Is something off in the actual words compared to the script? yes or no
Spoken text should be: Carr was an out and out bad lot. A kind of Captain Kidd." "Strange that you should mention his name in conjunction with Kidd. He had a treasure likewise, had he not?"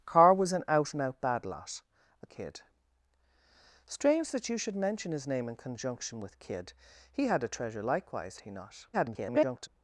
yes